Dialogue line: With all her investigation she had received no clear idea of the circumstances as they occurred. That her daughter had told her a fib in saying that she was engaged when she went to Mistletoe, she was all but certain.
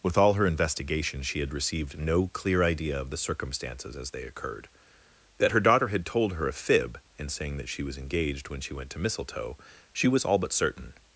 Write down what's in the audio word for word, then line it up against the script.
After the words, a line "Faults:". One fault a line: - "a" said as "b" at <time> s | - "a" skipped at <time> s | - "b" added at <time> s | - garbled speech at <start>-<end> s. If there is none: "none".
With all her investigation she had received no clear idea of the circumstances as they occurred. That her daughter had told her a fib in saying that she was engaged when she went to Mistletoe, she was all but certain.
Faults:
none